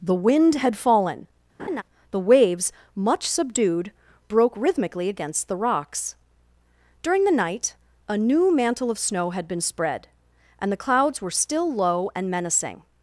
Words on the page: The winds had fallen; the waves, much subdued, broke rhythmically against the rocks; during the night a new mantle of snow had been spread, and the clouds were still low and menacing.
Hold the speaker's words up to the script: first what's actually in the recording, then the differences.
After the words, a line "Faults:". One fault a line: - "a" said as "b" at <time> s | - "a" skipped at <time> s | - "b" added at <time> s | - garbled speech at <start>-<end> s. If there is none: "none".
The wind had fallen; the waves, much subdued, broke rhythmically against the rocks; during the night a new mantle of snow had been spread, and the clouds were still low and menacing.
Faults:
- "winds" said as "wind" at 0.1 s